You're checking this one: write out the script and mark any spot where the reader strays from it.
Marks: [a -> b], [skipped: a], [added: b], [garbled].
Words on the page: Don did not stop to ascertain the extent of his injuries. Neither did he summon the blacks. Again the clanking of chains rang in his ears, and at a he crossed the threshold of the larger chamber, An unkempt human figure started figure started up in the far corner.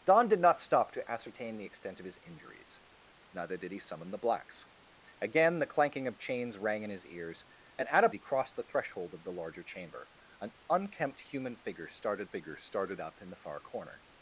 Don did not stop to ascertain the extent of his injuries. Neither did he summon the blacks. Again the clanking of chains rang in his ears, and at a he crossed the threshold of the larger chamber, An unkempt human figure started figure started up in the far corner.